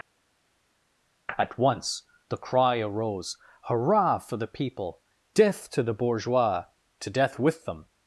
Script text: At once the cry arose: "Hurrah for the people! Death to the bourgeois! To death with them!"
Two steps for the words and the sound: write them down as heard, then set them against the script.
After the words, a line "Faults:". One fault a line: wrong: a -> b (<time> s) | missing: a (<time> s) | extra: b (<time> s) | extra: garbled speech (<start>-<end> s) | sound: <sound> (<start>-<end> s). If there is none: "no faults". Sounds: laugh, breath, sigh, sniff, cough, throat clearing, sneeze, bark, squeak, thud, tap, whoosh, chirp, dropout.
At once the cry arose: "Hurrah for the people! Death to the bourgeois! To death with them!"
Faults:
no faults